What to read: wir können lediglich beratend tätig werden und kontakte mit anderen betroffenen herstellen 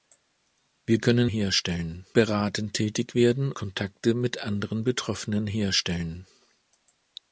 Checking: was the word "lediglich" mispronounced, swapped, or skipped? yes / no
yes